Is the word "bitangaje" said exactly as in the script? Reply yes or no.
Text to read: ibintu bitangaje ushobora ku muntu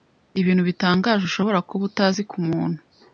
yes